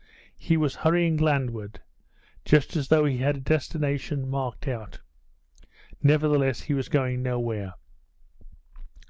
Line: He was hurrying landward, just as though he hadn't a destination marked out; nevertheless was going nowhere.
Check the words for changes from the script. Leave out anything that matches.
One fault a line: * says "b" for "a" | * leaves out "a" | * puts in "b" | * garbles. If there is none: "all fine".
* says "had" for "hadn't"
* puts in "he"